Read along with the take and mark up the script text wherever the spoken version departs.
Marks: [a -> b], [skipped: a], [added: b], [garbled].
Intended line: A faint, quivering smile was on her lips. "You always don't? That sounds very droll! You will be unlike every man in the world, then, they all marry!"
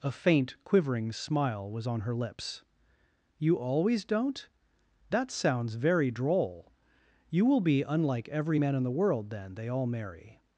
A faint, quivering smile was on her lips. "You always don't? That sounds very droll! You will be unlike every man in the world, then, they all marry!"